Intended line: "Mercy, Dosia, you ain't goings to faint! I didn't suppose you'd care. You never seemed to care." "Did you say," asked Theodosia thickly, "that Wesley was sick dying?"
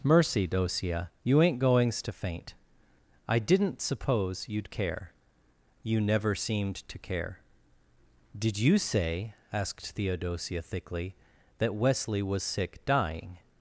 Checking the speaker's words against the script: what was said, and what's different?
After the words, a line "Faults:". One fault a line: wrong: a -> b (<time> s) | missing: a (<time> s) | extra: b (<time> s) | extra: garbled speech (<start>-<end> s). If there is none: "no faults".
"Mercy, Dosia, you ain't goings to faint! I didn't suppose you'd care. You never seemed to care." "Did you say," asked Theodosia thickly, "that Wesley was sick dying?"
Faults:
no faults